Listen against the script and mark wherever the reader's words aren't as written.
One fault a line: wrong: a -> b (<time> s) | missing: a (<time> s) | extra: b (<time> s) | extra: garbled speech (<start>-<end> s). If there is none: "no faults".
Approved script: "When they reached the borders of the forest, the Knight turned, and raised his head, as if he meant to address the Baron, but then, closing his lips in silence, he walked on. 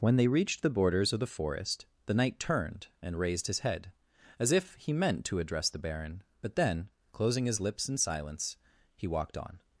no faults